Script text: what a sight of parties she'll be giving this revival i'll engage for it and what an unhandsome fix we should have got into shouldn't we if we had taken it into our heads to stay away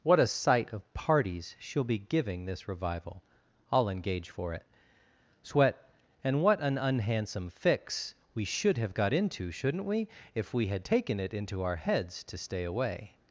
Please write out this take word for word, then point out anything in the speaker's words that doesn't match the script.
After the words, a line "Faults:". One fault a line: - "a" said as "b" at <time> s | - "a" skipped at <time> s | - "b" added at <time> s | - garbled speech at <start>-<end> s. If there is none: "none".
what a sight of parties she'll be giving this revival i'll engage for it sweat and what an unhandsome fix we should have got into shouldn't we if we had taken it into our heads to stay away
Faults:
- "sweat" added at 5.4 s